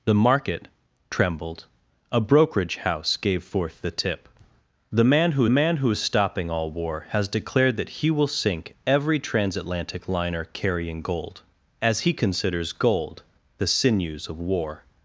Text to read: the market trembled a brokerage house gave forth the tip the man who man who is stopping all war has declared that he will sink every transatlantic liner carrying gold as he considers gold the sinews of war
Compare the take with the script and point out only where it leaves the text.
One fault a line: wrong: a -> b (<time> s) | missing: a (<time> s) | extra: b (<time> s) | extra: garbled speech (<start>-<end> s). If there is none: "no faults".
no faults